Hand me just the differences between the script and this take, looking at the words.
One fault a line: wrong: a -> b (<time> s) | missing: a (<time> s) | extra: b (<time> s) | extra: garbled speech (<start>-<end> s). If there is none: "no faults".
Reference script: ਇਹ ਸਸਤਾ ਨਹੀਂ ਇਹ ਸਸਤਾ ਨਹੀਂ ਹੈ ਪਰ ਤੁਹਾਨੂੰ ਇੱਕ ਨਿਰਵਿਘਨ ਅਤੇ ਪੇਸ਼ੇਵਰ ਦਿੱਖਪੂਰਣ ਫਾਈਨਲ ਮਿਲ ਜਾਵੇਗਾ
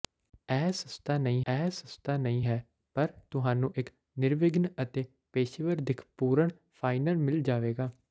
no faults